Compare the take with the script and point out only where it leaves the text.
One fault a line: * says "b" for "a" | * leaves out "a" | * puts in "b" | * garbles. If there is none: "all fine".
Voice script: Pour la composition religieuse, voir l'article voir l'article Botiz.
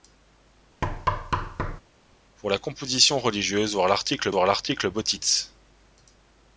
all fine